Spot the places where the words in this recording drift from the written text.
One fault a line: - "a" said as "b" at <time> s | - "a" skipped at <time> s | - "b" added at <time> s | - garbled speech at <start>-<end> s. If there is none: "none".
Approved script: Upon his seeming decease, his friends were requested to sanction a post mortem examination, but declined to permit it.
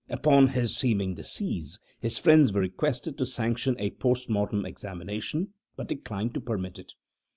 none